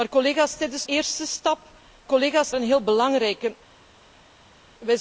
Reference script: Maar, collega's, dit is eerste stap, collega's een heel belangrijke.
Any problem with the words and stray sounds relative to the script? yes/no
no